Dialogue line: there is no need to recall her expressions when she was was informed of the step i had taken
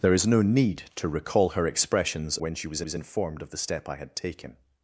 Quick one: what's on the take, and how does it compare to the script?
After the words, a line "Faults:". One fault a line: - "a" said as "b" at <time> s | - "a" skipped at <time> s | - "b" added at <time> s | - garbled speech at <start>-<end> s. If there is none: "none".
there is no need to recall her expressions when she was was informed of the step i had taken
Faults:
none